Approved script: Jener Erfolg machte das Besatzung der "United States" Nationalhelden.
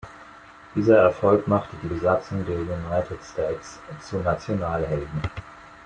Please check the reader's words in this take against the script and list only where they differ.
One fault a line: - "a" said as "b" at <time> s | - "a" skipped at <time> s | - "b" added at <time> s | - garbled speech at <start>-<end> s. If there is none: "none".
- "Jener" said as "Dieser" at 0.7 s
- "das" said as "die" at 1.8 s
- "zu" added at 4.0 s